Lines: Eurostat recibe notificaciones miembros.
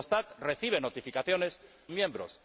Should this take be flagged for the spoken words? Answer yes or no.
no